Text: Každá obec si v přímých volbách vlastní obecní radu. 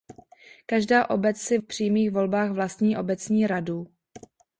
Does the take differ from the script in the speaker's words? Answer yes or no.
no